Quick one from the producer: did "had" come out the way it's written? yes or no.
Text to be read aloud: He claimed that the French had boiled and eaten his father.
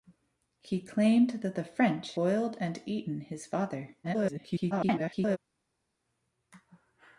no